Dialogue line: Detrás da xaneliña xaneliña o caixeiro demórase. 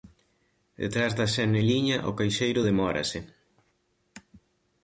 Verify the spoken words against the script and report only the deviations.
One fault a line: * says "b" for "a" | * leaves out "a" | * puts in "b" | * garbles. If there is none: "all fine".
* leaves out "xaneliña"